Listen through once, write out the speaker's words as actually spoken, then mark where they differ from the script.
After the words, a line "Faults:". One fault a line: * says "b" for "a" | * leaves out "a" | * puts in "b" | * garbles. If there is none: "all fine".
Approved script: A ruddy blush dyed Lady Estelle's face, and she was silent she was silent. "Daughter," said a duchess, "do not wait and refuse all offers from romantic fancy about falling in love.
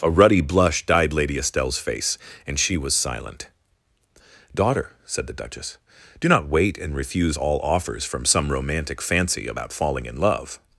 A ruddy blush dyed Lady Estelle's face, and she was silent. "Daughter," said the duchess, "do not wait and refuse all offers from some romantic fancy about falling in love.
Faults:
* leaves out "she was silent"
* says "the" for "a"
* puts in "some"